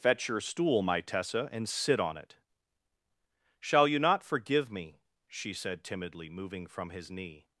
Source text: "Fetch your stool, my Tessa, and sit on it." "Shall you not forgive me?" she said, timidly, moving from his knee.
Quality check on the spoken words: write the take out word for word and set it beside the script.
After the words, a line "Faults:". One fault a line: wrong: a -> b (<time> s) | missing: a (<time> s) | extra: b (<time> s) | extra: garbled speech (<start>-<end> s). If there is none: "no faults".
"Fetch your stool, my Tessa, and sit on it." "Shall you not forgive me?" she said, timidly, moving from his knee.
Faults:
no faults